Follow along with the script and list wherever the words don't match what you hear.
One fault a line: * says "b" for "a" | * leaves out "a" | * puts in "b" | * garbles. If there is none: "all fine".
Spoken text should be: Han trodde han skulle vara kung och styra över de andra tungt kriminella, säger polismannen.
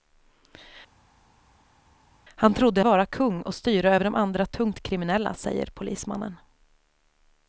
* leaves out "han skulle"